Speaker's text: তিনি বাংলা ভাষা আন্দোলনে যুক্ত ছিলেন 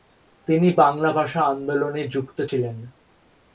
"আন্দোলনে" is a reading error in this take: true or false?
false